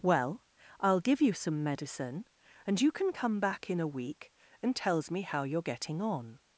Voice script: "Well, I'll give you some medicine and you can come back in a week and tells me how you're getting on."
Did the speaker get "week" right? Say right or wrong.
right